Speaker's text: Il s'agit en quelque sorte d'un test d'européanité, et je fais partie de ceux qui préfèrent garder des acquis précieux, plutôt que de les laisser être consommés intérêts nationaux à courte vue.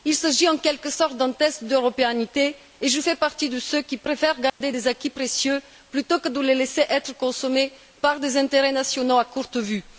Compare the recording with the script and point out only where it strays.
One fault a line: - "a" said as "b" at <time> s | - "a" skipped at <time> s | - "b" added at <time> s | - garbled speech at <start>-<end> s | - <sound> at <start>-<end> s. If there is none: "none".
- dropout at 4.5-4.6 s
- "par des" added at 8.0 s